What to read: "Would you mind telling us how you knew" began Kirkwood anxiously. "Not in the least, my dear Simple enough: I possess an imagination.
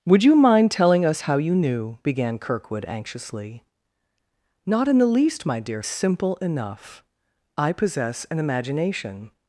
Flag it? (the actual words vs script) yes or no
no